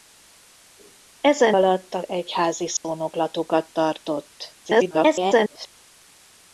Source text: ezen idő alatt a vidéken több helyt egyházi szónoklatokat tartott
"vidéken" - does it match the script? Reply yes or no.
no